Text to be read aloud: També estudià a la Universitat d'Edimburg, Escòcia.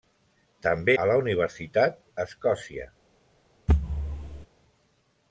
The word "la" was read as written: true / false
true